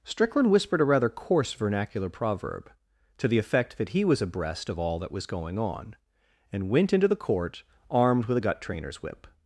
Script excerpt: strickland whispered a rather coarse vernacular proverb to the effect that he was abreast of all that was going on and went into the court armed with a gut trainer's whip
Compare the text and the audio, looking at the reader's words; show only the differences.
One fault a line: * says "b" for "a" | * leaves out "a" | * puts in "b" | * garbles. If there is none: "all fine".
all fine